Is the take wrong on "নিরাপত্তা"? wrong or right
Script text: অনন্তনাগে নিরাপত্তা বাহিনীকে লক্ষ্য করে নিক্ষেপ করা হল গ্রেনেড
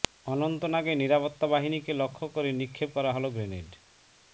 right